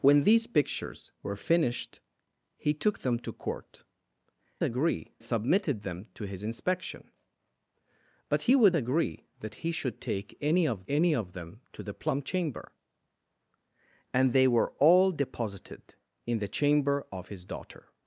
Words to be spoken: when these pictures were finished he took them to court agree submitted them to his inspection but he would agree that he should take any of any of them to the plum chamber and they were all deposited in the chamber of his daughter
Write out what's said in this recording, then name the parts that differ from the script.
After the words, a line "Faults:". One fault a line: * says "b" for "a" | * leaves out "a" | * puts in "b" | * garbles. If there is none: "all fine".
when these pictures were finished he took them to court agree submitted them to his inspection but he would agree that he should take any of any of them to the plum chamber and they were all deposited in the chamber of his daughter
Faults:
all fine